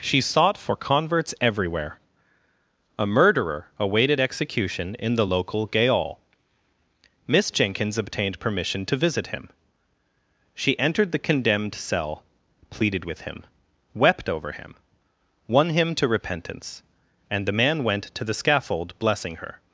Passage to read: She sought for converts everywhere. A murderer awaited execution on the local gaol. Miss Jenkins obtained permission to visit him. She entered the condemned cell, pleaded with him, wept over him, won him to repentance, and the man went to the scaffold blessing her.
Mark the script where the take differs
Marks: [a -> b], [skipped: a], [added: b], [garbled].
She sought for converts everywhere. A murderer awaited execution [on -> in] the local gaol. Miss Jenkins obtained permission to visit him. She entered the condemned cell, pleaded with him, wept over him, won him to repentance, and the man went to the scaffold blessing her.